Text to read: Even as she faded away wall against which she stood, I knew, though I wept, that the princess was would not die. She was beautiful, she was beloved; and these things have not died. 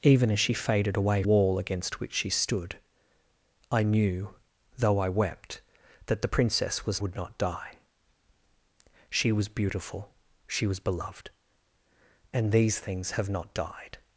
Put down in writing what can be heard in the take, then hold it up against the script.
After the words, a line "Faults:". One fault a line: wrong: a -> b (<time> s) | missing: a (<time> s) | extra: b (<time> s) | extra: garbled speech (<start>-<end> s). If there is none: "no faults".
Even as she faded away wall against which she stood, I knew, though I wept, that the princess was would not die. She was beautiful, she was beloved; and these things have not died.
Faults:
no faults